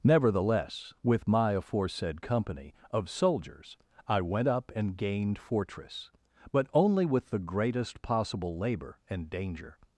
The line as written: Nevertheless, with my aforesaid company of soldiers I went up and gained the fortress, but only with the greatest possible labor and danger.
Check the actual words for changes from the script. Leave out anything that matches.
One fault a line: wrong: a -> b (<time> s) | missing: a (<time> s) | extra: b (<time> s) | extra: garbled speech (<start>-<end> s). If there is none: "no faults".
missing: the (5.4 s)